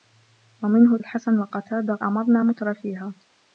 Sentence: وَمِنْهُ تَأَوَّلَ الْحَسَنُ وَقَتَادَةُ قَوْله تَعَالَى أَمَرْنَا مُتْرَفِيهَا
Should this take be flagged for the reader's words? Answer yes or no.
yes